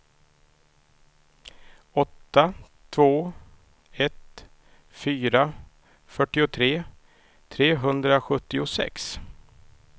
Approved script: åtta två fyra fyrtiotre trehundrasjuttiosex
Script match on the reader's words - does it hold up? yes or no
no